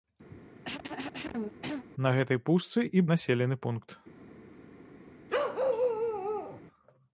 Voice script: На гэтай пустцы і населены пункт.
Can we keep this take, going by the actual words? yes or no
yes